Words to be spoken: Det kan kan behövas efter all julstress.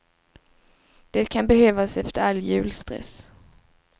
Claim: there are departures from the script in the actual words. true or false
true